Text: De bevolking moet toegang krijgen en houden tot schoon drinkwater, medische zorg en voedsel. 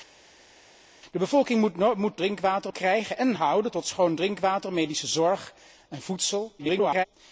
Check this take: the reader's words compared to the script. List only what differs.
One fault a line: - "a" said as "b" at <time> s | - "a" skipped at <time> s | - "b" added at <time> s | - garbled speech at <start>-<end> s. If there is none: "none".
- "toegang" said as "drinkwater" at 2.2 s
- garbled speech at 6.6-7.1 s